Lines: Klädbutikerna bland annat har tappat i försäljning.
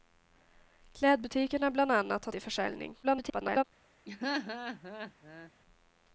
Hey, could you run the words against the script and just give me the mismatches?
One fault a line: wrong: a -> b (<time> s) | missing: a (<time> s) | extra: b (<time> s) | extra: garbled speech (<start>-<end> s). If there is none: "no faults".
missing: tappat (2.3 s)
extra: garbled speech (3.0-3.6 s)